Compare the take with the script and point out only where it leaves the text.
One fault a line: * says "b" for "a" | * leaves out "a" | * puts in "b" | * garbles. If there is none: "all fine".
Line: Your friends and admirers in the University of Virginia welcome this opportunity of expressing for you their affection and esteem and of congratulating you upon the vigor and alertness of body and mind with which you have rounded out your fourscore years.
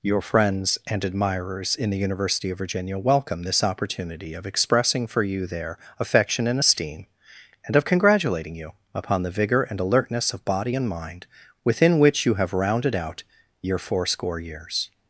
* says "within" for "with"